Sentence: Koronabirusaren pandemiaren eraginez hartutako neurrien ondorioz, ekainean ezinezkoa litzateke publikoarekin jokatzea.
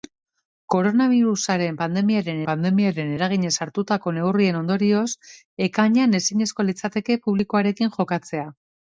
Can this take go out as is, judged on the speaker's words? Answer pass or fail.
fail